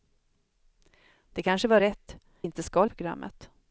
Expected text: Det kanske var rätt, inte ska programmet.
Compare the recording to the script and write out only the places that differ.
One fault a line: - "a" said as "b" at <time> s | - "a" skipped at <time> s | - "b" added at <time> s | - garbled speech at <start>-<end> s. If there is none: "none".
none